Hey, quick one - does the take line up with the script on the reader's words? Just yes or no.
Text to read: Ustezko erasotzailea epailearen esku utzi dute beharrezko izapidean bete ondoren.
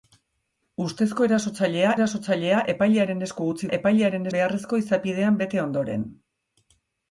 no